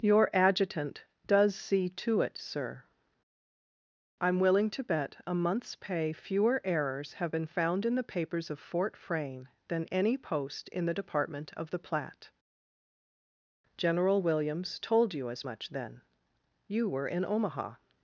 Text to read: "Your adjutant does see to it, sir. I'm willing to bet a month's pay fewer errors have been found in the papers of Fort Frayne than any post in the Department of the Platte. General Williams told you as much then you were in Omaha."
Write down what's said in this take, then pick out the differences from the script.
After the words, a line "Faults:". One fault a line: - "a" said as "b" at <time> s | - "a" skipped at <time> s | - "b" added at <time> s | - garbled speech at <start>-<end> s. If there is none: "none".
"Your adjutant does see to it, sir. I'm willing to bet a month's pay fewer errors have been found in the papers of Fort Frayne than any post in the Department of the Platte. General Williams told you as much then you were in Omaha."
Faults:
none